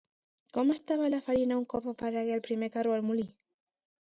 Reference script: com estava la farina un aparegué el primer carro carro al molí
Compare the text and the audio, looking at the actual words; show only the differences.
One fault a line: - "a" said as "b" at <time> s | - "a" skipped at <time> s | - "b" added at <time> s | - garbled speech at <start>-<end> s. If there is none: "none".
- "cop" added at 1.7 s
- "carro" skipped at 3.0 s